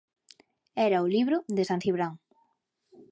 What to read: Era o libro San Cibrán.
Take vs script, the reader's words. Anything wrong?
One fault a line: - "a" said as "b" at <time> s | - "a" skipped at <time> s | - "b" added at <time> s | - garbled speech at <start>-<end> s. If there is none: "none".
- "de" added at 1.5 s